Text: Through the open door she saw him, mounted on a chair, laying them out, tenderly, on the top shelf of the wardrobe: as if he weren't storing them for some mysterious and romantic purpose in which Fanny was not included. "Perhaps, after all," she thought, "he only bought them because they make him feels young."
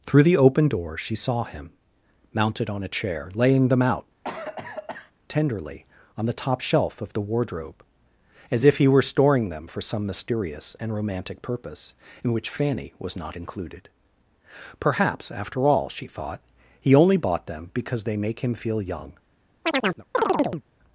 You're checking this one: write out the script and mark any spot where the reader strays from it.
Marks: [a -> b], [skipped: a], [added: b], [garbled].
Through the open door she saw him, mounted on a chair, laying them out, tenderly, on the top shelf of the wardrobe: as if he [weren't -> were] storing them for some mysterious and romantic purpose in which Fanny was not included. "Perhaps, after all," she thought, "he only bought them because they make him [feels -> feel] young."